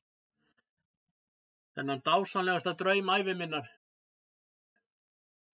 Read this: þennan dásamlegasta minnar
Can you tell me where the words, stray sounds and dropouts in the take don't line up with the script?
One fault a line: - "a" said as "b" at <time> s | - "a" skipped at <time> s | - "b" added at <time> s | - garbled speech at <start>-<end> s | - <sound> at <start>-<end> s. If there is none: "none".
- "draum ævi" added at 2.8 s